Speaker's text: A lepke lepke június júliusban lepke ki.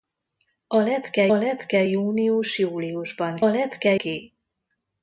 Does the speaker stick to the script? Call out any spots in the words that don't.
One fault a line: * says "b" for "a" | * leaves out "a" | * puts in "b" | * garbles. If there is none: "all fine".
all fine